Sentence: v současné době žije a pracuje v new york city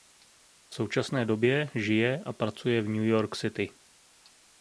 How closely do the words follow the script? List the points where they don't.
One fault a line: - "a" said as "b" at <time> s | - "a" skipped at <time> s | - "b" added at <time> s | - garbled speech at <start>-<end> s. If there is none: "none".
none